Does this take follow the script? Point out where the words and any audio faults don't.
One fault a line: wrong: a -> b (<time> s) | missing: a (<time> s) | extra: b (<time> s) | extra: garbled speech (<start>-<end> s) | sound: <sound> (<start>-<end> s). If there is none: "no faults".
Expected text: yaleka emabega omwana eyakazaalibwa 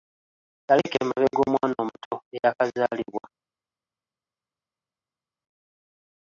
extra: omuto (1.8 s)